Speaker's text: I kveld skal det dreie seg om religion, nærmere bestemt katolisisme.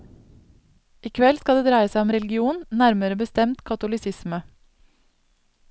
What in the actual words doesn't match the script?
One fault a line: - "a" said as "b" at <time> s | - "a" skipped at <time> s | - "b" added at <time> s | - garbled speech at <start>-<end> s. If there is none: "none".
none